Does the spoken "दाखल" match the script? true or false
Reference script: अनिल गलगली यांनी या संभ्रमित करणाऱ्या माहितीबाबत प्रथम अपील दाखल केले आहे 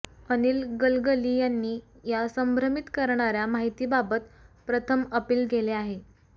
false